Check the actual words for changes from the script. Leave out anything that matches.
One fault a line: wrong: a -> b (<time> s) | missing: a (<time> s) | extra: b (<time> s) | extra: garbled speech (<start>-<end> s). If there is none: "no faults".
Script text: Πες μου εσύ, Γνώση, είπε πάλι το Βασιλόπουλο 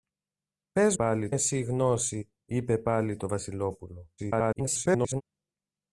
wrong: μου -> πάλι (0.9 s)
extra: garbled speech (4.2-5.2 s)